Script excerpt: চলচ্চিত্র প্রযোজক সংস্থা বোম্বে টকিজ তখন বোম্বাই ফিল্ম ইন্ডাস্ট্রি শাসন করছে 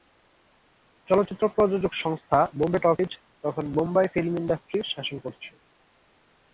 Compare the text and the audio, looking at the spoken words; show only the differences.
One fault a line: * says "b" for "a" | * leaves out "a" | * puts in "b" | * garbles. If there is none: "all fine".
all fine